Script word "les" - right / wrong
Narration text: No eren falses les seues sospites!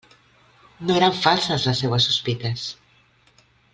right